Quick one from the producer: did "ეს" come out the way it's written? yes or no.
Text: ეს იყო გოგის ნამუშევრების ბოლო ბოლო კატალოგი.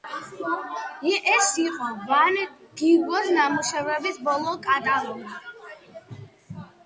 yes